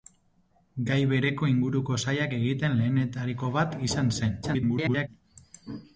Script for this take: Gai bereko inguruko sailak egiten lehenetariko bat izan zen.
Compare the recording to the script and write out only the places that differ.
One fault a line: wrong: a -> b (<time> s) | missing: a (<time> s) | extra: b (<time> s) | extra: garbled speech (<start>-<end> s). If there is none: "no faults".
extra: garbled speech (4.4-5.1 s)